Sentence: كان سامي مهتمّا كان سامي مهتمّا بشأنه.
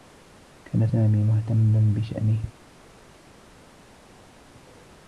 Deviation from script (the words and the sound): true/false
true